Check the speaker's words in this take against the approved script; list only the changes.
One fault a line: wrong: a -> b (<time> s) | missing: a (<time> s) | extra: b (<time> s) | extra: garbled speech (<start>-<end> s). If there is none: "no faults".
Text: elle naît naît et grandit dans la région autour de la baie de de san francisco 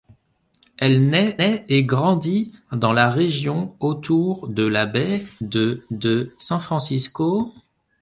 no faults